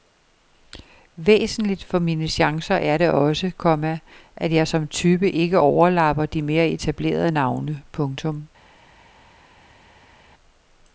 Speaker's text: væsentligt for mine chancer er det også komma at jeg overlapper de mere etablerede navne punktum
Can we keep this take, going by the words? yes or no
no